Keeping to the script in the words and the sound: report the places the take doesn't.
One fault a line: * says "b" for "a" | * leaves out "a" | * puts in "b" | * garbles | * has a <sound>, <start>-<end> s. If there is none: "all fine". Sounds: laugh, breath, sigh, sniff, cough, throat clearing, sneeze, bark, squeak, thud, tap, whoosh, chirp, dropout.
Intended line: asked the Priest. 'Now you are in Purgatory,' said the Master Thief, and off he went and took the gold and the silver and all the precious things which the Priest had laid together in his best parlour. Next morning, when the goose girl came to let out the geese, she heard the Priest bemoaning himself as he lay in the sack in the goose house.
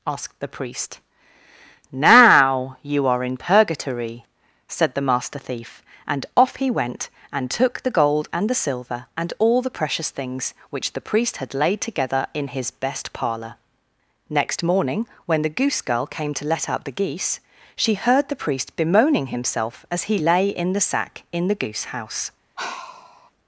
* has a sigh, 22.6-23.3 s